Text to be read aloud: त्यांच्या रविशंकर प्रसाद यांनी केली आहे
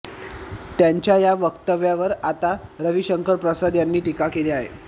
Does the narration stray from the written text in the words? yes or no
yes